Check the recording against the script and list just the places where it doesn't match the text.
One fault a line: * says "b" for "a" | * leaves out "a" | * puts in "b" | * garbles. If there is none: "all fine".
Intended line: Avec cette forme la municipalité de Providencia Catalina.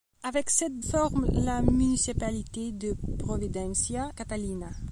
all fine